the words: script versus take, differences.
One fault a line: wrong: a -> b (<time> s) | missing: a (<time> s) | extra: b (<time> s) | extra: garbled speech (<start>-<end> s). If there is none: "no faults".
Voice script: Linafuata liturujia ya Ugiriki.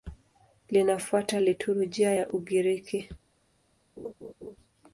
no faults